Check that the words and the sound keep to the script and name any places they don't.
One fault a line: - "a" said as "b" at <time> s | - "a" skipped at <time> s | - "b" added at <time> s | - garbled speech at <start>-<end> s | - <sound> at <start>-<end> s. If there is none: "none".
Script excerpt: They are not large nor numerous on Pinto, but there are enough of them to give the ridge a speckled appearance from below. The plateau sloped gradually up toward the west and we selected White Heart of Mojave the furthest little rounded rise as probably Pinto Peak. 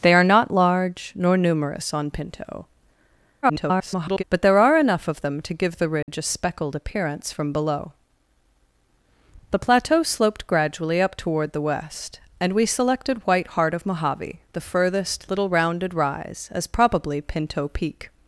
- garbled speech at 3.4-4.2 s
- dropout at 6.0-6.1 s